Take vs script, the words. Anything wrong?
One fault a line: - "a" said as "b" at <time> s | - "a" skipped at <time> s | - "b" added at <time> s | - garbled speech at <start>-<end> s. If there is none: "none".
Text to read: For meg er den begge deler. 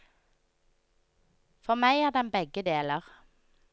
none